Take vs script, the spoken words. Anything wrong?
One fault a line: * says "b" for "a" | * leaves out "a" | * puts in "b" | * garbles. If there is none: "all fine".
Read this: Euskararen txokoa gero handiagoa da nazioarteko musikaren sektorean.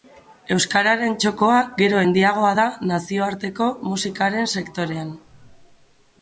all fine